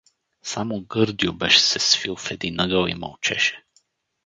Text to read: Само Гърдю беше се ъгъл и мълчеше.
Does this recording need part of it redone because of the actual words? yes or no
yes